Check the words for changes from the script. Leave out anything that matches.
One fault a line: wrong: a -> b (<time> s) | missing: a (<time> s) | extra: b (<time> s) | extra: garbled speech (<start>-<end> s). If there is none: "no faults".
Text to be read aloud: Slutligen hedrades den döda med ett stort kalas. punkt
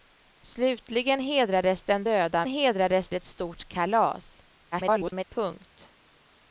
wrong: med -> hedrades (2.5 s)
extra: garbled speech (4.7-5.2 s)